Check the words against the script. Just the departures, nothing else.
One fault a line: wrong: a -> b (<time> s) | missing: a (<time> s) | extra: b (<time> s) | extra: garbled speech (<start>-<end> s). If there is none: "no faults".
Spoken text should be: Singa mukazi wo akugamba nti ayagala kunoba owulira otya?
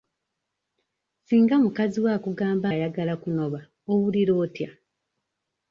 missing: nti (2.7 s)